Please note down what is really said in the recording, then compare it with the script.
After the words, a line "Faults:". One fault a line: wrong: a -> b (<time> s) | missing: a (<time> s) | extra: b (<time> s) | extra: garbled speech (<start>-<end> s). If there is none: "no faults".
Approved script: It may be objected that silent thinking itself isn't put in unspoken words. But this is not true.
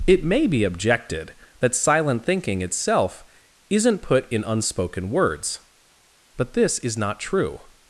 It may be objected that silent thinking itself isn't put in unspoken words. But this is not true.
Faults:
no faults